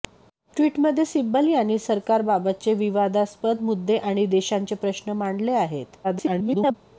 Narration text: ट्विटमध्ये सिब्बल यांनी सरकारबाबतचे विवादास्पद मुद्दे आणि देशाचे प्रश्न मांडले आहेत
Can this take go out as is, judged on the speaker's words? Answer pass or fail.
fail